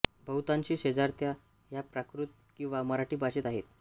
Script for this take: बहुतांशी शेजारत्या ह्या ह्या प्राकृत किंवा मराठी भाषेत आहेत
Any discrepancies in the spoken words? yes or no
yes